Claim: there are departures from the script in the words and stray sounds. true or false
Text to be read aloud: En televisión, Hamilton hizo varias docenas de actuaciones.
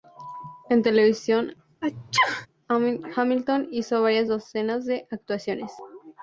true